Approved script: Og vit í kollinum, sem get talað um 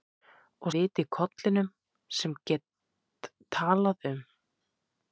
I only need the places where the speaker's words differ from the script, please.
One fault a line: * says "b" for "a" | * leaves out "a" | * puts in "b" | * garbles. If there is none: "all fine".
all fine